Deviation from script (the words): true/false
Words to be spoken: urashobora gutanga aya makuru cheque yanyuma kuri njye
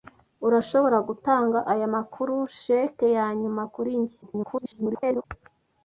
true